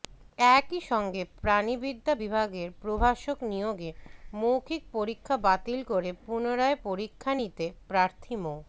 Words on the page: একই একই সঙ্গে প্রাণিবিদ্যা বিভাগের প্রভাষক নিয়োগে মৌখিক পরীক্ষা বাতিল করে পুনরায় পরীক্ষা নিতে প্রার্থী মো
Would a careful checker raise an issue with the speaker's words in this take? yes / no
yes